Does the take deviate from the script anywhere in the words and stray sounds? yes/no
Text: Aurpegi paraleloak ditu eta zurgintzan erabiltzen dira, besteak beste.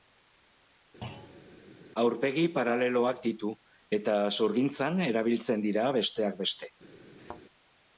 yes